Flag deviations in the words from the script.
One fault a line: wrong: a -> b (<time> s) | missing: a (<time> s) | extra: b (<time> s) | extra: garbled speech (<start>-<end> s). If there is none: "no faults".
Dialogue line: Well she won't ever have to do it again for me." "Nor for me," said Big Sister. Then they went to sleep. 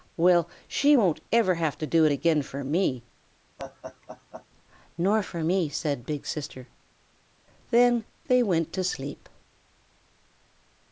no faults